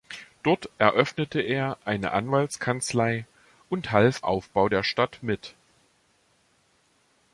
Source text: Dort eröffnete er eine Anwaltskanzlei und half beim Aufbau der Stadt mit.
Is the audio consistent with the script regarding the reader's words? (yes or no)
no